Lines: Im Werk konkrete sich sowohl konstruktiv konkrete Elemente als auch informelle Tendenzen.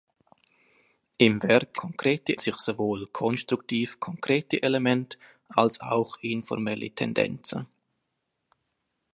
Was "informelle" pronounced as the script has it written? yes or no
yes